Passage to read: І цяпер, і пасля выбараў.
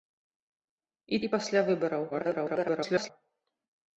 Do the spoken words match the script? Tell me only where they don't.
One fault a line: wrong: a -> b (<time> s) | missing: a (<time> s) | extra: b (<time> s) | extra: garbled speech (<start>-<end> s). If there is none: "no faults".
missing: цяпер (1.2 s)
extra: garbled speech (2.1-3.1 s)